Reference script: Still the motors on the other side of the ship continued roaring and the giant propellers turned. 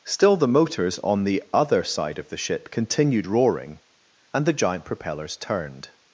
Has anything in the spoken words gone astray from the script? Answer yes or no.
no